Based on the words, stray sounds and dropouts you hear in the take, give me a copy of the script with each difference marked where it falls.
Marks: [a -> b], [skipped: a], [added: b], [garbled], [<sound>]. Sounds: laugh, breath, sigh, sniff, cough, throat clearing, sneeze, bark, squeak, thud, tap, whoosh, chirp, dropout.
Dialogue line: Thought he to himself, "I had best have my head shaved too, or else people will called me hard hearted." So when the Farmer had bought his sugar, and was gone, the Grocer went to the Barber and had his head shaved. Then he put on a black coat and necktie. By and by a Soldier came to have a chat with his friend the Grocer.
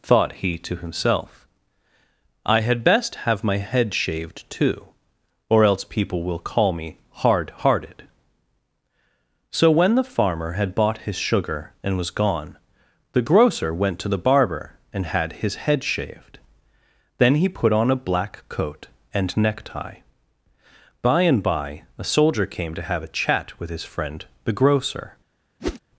Thought he to himself, "I had best have my head shaved too, or else people will [called -> call] me hard hearted." So when the Farmer had bought his sugar, and was gone, the Grocer went to the Barber and had his head shaved. Then he put on a black coat and necktie. By and by a Soldier came to have a chat with his friend the Grocer. [whoosh]